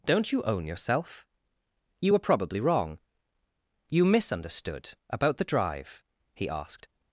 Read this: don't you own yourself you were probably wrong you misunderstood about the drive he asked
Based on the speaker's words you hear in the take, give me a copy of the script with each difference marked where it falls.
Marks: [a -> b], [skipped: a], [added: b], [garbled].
don't you own yourself you were probably wrong you misunderstood about the drive he asked